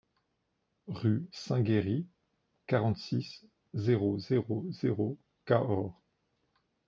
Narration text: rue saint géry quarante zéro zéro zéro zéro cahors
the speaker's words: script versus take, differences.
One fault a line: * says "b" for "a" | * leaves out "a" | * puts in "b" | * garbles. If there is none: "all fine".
* says "six" for "zéro"